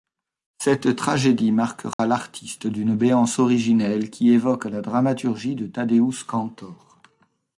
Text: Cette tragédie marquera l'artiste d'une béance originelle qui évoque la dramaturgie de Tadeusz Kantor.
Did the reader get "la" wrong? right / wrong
right